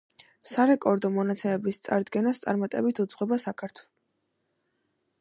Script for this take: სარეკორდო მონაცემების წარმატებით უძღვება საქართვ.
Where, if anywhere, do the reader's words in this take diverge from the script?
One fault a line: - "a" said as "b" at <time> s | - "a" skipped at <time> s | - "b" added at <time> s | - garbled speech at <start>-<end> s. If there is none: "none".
- "წარდგენას" added at 1.9 s